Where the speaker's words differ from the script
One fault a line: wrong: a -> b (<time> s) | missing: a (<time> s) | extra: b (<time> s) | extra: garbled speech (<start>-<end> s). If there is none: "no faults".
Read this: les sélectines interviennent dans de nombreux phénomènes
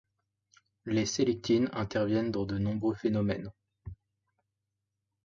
no faults